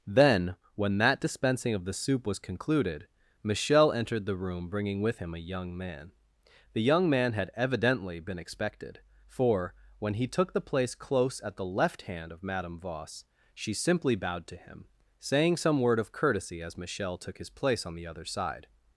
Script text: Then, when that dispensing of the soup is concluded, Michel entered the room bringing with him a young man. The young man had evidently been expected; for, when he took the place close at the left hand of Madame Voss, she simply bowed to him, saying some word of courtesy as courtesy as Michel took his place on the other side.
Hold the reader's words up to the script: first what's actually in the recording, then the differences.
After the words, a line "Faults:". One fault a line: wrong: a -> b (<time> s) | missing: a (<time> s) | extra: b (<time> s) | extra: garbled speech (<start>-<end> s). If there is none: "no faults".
Then, when that dispensing of the soup was concluded, Michel entered the room bringing with him a young man. The young man had evidently been expected; for, when he took the place close at the left hand of Madame Voss, she simply bowed to him, saying some word of courtesy as Michel took his place on the other side.
Faults:
wrong: is -> was (2.2 s)
missing: courtesy as (16.8 s)